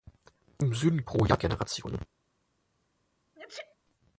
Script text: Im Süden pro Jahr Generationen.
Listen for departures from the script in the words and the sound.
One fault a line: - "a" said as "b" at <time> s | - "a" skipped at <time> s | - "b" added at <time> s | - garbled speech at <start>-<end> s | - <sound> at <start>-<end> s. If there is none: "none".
- sneeze at 3.4-3.8 s